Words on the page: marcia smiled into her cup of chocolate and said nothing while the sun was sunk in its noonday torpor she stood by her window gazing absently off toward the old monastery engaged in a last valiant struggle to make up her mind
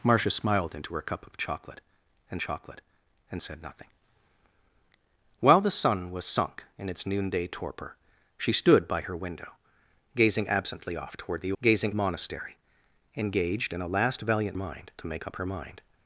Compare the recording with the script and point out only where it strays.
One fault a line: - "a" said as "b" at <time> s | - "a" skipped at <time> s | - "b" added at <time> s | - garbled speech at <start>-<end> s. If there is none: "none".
- "chocolate and" added at 2.4 s
- "old" said as "gazing" at 11.6 s
- "struggle" said as "mind" at 14.5 s